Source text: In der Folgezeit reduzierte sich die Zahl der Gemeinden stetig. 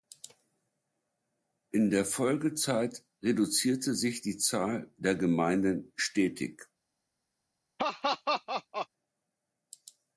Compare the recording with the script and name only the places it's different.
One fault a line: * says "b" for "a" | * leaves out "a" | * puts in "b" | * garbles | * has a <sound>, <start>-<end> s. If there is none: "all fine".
* has a laugh, 7.8-8.9 s